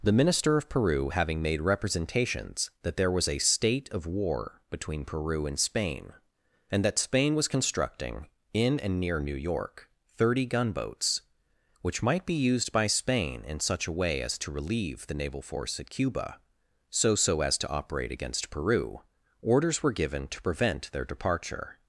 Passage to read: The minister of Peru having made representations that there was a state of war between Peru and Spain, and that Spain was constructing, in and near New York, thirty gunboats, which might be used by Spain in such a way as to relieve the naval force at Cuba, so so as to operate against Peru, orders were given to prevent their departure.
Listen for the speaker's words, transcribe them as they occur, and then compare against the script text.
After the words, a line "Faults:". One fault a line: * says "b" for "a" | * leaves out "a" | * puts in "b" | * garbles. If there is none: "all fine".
The minister of Peru having made representations that there was a state of war between Peru and Spain, and that Spain was constructing, in and near New York, thirty gunboats, which might be used by Spain in such a way as to relieve the naval force at Cuba, so so as to operate against Peru, orders were given to prevent their departure.
Faults:
all fine